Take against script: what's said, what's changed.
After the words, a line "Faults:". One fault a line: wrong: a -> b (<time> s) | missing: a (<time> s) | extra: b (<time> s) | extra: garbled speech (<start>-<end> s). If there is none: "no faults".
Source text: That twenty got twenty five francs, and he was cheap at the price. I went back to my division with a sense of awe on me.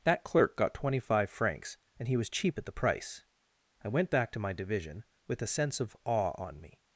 That clerk got twenty five francs, and he was cheap at the price. I went back to my division with a sense of awe on me.
Faults:
wrong: twenty -> clerk (0.2 s)